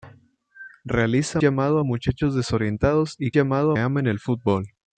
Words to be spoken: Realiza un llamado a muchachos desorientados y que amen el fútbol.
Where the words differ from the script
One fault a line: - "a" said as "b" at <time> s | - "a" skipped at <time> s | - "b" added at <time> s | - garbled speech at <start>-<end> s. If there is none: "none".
- "un" skipped at 1.4 s
- "que" said as "llamado" at 3.3 s